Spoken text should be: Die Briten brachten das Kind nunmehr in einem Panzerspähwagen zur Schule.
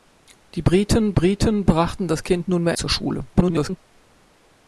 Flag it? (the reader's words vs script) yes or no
yes